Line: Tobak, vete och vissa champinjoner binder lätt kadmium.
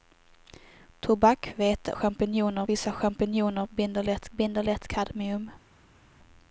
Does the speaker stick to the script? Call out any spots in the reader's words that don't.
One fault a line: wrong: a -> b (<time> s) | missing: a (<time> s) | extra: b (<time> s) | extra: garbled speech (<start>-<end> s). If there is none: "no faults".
wrong: och -> champinjoner (1.9 s)
extra: binder lätt (4.3 s)